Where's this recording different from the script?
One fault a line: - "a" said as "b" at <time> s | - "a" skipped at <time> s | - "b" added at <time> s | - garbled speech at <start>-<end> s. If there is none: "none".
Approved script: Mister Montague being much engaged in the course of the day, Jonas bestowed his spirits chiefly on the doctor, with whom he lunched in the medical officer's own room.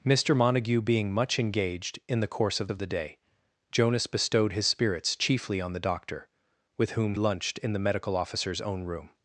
- "of" added at 2.7 s
- "he" skipped at 7.1 s